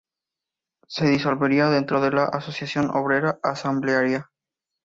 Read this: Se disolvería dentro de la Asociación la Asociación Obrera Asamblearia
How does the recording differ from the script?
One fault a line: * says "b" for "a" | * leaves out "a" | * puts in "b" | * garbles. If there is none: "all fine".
* leaves out "la Asociación"